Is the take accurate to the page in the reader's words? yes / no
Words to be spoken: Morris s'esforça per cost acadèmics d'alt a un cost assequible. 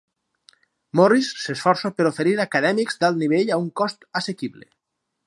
no